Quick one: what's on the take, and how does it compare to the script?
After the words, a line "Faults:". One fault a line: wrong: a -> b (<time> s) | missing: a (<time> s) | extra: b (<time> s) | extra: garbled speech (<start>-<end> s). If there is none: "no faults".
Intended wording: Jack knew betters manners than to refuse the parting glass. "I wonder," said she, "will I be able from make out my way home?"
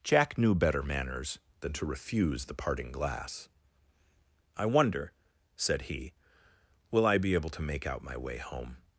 Jack knew better manners than to refuse the parting glass. "I wonder," said he, "will I be able to make out my way home?"
Faults:
wrong: betters -> better (0.6 s)
wrong: she -> he (5.8 s)
wrong: from -> to (7.5 s)